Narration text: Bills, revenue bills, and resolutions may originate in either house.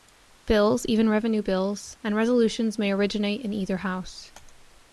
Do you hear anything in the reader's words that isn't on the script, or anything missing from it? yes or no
yes